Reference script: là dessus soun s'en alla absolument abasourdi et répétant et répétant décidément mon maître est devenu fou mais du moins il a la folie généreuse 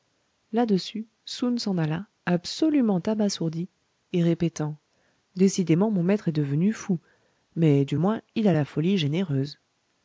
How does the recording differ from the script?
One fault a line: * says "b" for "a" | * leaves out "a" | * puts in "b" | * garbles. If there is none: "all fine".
* leaves out "et répétant"